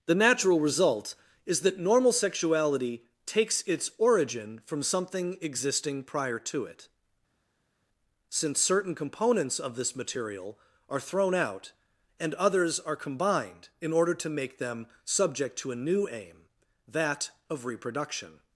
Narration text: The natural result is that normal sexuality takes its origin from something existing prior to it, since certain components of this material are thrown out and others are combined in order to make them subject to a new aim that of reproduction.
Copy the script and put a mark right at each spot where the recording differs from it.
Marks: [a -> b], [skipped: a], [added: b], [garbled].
The natural result is that normal sexuality takes its origin from something existing prior to it, since certain components of this material are thrown out and others are combined in order to make them subject to a new aim that of reproduction.